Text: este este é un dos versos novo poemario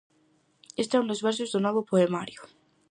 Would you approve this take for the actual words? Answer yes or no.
no